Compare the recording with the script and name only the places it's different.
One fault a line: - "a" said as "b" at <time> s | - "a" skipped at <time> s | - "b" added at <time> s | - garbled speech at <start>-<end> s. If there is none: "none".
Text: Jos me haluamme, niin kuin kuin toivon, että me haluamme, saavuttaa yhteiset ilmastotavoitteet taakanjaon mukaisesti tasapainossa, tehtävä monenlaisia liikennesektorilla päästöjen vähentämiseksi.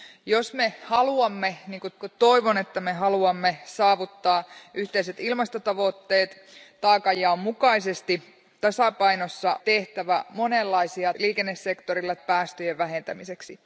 none